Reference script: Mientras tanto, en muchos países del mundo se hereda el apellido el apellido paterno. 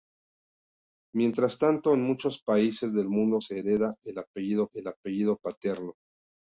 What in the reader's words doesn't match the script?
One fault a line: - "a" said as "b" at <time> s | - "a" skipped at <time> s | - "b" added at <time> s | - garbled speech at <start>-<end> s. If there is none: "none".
none